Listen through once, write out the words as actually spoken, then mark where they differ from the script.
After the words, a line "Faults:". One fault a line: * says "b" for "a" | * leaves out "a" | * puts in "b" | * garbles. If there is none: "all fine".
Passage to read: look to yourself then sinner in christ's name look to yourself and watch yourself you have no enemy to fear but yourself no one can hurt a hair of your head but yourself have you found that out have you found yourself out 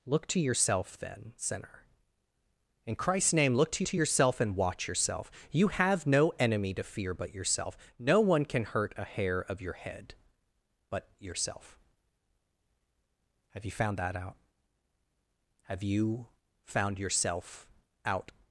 look to yourself then sinner in christ's name look to to yourself and watch yourself you have no enemy to fear but yourself no one can hurt a hair of your head but yourself have you found that out have you found yourself out
Faults:
* puts in "to"